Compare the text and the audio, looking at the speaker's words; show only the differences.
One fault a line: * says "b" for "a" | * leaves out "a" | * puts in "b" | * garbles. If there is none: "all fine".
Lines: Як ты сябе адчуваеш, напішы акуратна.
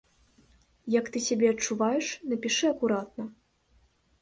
all fine